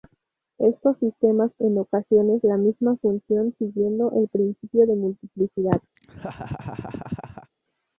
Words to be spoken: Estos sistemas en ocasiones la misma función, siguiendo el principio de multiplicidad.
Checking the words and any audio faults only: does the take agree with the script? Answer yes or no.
no